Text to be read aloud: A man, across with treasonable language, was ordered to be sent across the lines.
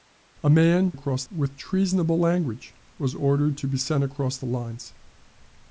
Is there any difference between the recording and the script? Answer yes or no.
no